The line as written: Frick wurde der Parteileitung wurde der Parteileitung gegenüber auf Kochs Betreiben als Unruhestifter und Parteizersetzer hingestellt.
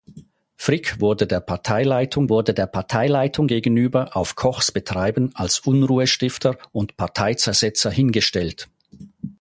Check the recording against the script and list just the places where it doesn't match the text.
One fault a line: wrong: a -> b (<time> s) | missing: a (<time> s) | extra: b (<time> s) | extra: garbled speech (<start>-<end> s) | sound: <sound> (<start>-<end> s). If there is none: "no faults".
no faults